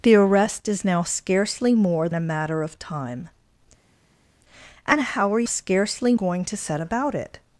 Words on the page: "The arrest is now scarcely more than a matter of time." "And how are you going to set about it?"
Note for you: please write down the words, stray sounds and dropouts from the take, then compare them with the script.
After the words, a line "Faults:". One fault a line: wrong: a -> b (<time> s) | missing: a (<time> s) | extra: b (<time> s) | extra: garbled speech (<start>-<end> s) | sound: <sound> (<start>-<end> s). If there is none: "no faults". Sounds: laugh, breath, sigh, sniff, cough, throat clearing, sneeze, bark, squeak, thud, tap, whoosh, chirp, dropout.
"The arrest is now scarcely more a matter of time." "And how are scarcely going to set about it?"
Faults:
missing: than (2.1 s)
wrong: you -> scarcely (5.4 s)